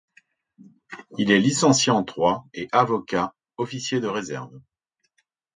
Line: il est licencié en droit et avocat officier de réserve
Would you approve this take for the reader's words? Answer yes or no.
yes